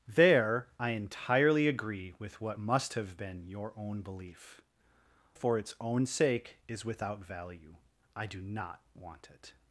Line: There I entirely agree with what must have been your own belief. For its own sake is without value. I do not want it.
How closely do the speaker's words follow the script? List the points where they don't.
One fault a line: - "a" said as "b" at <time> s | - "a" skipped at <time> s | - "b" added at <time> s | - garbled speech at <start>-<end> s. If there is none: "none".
none